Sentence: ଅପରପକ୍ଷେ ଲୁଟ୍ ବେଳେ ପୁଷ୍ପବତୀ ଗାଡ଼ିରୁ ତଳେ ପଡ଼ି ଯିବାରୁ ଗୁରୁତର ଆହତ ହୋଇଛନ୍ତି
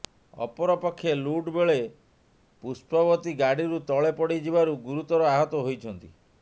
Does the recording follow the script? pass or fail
pass